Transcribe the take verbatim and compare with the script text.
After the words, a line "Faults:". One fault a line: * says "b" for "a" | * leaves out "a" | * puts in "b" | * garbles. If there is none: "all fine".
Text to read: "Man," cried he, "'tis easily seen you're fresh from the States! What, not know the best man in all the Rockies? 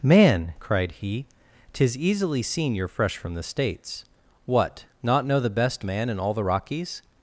"Man," cried he, "'tis easily seen you're fresh from the States! What, not know the best man in all the Rockies?
Faults:
all fine